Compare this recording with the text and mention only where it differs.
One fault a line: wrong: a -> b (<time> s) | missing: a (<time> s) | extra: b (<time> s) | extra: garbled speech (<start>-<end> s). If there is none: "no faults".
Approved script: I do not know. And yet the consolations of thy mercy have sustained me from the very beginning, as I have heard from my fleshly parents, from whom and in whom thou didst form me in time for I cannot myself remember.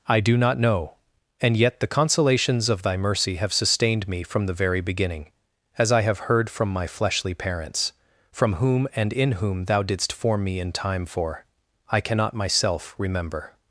no faults